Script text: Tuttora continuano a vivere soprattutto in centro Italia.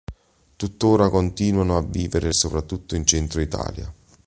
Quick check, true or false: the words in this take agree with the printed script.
true